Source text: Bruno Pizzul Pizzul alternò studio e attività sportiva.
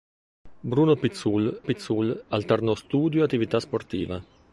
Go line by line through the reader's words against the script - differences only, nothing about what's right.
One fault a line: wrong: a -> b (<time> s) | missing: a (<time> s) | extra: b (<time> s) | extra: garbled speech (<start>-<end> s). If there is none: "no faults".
no faults